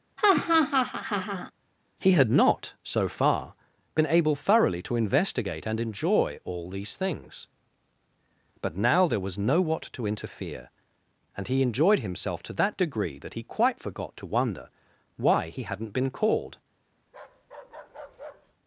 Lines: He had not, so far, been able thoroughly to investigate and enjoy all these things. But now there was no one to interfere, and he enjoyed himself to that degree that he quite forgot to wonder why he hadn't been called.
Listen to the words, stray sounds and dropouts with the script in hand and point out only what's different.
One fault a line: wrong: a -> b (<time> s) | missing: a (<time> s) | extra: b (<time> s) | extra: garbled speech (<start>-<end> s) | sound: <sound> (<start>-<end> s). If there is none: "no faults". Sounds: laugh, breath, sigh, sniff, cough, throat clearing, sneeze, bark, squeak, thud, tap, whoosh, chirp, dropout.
sound: laugh (0.2-1.5 s)
wrong: one -> what (9.6 s)
sound: bark (17.1-18.5 s)